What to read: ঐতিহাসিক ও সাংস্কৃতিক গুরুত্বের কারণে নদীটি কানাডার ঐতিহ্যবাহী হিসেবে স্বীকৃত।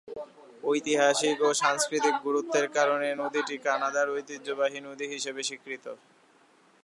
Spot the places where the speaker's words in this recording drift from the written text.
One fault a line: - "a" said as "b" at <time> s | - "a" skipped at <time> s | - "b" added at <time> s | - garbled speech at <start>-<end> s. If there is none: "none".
- "নদী" added at 4.9 s